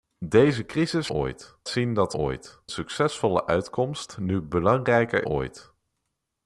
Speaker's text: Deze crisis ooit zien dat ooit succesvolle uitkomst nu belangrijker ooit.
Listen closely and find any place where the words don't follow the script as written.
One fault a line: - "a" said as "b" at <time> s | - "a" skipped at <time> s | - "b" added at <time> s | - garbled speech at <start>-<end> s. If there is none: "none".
none